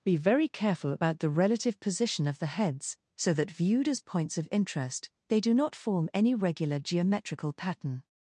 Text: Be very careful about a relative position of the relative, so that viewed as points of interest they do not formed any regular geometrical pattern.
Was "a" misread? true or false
true